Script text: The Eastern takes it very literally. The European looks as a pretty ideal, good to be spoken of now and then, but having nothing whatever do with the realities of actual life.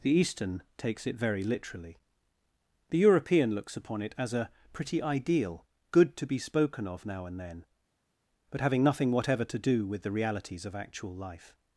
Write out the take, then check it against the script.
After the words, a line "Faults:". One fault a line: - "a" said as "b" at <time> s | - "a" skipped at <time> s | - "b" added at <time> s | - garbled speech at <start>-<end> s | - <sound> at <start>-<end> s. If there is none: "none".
The Eastern takes it very literally. The European looks upon it as a pretty ideal, good to be spoken of now and then, but having nothing whatever to do with the realities of actual life.
Faults:
- "upon it" added at 3.8 s
- "to" added at 9.4 s